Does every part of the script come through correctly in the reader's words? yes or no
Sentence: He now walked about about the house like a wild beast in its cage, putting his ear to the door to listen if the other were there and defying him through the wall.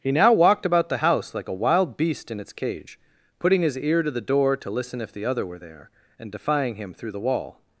no